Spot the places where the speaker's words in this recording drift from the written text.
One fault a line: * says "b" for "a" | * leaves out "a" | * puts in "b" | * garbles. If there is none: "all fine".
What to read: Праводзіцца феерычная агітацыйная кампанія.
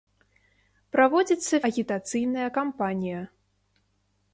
* leaves out "феерычная"